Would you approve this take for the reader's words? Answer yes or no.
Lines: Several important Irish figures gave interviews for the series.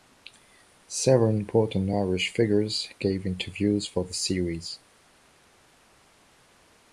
yes